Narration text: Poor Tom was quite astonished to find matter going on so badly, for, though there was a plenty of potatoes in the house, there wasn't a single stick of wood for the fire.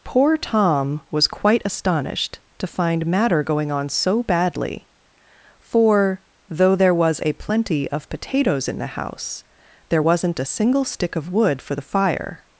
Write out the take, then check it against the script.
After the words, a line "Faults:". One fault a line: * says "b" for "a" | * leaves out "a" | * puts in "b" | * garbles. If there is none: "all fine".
Poor Tom was quite astonished to find matter going on so badly, for, though there was a plenty of potatoes in the house, there wasn't a single stick of wood for the fire.
Faults:
all fine